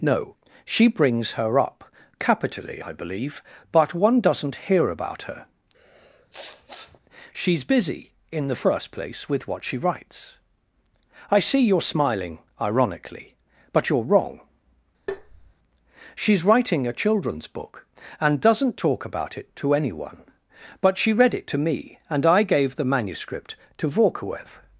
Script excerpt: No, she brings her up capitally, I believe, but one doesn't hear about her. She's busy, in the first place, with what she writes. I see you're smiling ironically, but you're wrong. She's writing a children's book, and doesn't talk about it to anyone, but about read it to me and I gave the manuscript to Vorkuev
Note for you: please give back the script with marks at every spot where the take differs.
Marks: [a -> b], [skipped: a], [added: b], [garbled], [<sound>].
No, she brings her up capitally, I believe, but one doesn't hear about her. [sniff] She's busy, in the first place, with what she writes. I see you're smiling ironically, but you're wrong. [tap] She's writing a children's book, and doesn't talk about it to anyone, but [about -> she] read it to me and I gave the manuscript to Vorkuev